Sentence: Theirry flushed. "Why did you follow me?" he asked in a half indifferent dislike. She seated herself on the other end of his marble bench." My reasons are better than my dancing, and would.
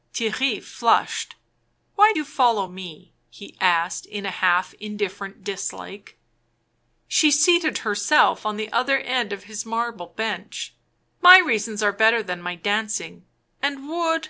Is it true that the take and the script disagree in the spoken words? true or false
true